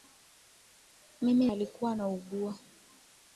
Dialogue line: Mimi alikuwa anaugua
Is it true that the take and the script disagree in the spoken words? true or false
false